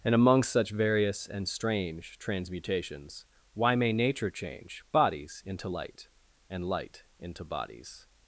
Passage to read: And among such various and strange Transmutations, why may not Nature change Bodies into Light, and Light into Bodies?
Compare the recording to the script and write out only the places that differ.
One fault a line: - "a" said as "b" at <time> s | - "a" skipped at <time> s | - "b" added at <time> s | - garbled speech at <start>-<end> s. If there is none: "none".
- "not" skipped at 3.9 s